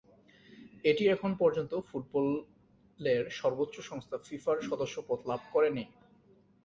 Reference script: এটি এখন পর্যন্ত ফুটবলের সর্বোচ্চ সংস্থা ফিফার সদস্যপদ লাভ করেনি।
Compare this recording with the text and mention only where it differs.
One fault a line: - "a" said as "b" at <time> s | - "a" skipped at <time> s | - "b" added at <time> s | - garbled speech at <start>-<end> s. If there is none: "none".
none